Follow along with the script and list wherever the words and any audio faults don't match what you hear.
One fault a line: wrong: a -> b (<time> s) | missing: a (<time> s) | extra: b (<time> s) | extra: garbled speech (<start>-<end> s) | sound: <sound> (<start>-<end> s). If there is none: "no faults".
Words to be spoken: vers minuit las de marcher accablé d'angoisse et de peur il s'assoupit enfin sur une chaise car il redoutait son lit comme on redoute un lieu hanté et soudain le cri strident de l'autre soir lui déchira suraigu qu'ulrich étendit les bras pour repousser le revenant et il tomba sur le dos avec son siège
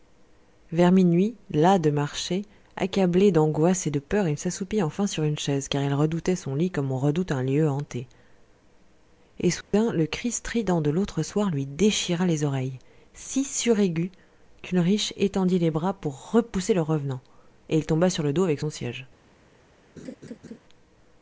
sound: dropout (9.6-9.7 s)
extra: les oreilles si (12.2 s)
sound: laugh (20.0-20.6 s)